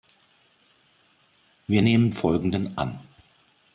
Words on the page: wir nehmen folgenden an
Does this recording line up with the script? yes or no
yes